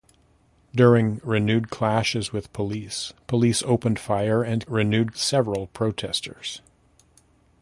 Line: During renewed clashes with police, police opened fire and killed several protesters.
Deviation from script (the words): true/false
true